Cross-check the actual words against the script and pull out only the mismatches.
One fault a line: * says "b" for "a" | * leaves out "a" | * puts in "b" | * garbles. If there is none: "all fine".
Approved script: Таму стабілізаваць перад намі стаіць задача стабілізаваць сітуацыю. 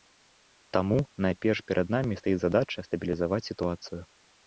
* says "найперш" for "стабілізаваць"